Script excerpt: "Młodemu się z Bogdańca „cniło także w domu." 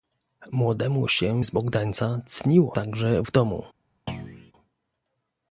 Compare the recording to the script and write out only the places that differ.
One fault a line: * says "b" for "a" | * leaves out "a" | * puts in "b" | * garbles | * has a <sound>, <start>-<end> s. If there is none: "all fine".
* has a thud, 4.1-4.5 s